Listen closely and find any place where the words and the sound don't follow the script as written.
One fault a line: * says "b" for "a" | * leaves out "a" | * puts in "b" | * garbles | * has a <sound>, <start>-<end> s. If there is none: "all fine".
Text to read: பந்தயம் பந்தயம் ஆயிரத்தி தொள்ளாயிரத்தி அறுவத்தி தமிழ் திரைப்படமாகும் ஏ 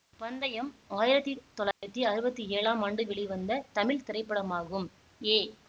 * leaves out "பந்தயம்"
* has a dropout, 1.7-1.8 s
* puts in "ஏழாம் ஆண்டு வெளிவந்த"